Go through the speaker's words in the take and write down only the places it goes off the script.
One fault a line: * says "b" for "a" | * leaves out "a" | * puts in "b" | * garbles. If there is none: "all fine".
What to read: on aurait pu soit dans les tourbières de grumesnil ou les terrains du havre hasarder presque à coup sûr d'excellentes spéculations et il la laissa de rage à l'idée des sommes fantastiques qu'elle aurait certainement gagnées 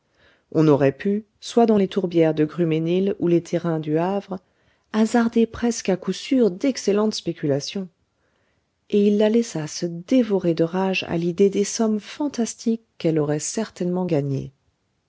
* puts in "se dévorer"